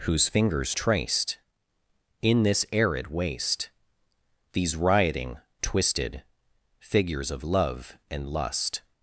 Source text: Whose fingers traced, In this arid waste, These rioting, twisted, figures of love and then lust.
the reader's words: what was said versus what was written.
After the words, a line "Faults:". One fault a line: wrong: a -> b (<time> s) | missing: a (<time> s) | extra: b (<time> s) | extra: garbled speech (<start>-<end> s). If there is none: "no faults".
Whose fingers traced, In this arid waste, These rioting, twisted, figures of love and lust.
Faults:
missing: then (8.2 s)